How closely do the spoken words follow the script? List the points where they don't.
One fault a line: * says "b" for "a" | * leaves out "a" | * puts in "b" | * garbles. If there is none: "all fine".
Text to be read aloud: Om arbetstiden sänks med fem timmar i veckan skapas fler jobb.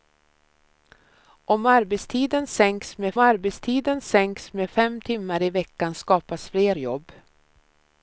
* puts in "arbetstiden sänks med"